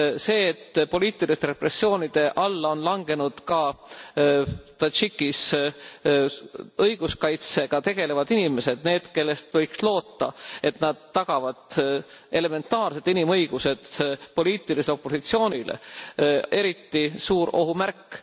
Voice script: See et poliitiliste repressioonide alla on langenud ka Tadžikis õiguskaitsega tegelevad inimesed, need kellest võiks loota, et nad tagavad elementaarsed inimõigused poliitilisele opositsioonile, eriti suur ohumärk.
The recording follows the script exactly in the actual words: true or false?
true